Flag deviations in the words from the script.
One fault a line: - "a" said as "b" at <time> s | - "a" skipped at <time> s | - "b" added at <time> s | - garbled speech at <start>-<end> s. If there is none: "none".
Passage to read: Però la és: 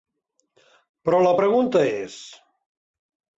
- "pregunta" added at 1.4 s